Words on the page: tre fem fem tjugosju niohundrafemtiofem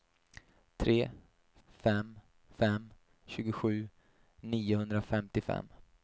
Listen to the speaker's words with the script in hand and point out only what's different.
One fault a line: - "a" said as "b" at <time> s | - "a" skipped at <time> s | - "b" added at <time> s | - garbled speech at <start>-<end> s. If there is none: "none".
none